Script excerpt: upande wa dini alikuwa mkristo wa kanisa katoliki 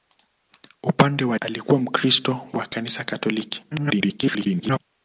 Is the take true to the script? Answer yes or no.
no